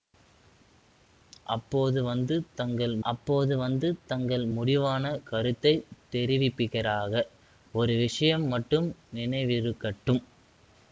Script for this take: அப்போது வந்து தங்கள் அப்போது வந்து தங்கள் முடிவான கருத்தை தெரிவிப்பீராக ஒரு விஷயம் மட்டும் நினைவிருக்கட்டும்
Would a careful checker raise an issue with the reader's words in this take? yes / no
no